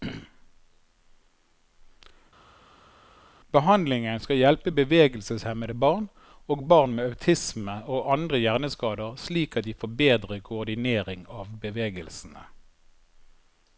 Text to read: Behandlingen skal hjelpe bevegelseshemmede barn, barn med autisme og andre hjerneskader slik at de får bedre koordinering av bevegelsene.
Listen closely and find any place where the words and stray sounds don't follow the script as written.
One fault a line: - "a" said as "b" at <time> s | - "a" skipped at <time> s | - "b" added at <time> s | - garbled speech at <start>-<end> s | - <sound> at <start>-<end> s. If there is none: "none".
- "og" added at 6.5 s